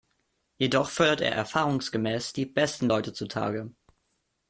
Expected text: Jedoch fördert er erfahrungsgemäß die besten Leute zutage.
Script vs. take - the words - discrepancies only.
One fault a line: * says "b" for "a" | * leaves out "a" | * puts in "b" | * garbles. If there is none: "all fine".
all fine